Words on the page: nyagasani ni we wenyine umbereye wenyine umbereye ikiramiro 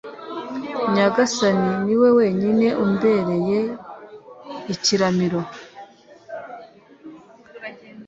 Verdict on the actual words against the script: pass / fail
fail